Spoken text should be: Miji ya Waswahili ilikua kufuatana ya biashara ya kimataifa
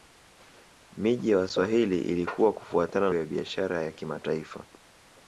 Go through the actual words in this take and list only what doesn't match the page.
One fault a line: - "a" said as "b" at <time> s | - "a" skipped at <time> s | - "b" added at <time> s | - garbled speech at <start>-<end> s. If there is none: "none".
none